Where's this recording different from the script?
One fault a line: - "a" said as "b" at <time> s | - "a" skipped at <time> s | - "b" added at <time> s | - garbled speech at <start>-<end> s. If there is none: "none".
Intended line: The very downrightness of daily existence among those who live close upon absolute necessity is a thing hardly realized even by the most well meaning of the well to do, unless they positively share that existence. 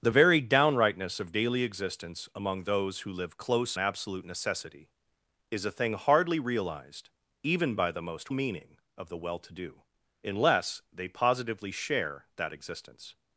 - "upon" skipped at 3.8 s
- "well" skipped at 8.3 s